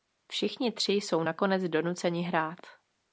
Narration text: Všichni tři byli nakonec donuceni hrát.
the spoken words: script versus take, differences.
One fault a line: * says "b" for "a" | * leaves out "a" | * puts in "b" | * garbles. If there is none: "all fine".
* says "jsou" for "byli"